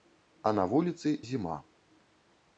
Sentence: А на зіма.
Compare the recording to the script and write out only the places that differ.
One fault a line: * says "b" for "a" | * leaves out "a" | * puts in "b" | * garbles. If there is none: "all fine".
* puts in "вуліцы"